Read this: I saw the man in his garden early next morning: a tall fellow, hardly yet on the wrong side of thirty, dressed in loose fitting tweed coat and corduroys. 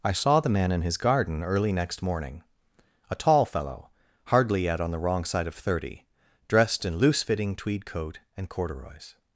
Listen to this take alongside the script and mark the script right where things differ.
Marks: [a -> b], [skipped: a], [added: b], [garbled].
I saw the man in his garden early next morning: a tall fellow, hardly yet on the wrong side of thirty, dressed in loose fitting tweed coat and corduroys.